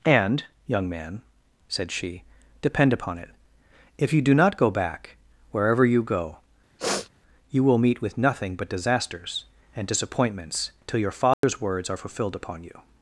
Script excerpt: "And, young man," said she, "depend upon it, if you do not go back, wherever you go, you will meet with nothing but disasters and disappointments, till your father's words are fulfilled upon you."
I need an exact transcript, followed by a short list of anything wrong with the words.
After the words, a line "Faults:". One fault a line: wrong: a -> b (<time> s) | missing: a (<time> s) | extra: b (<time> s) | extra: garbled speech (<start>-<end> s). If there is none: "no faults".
"And, young man," said she, "depend upon it, if you do not go back, wherever you go, you will meet with nothing but disasters and disappointments, till your father's words are fulfilled upon you."
Faults:
no faults